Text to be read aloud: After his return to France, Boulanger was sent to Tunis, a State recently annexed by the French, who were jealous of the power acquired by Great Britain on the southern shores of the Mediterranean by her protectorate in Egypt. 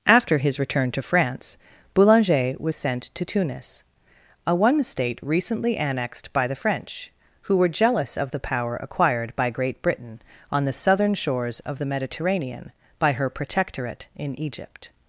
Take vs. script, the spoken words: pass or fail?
fail